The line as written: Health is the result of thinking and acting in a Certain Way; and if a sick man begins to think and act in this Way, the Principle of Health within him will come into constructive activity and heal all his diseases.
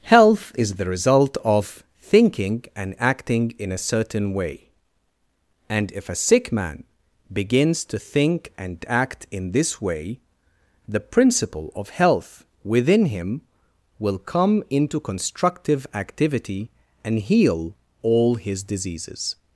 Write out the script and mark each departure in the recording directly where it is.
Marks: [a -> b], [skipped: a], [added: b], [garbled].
Health is the result of thinking and acting in a Certain Way; and if a sick man begins to think and act in this Way, the Principle of Health within him will come into constructive activity and heal all his diseases.